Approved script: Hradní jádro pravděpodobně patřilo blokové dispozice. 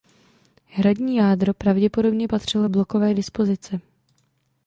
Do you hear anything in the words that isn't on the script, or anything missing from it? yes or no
no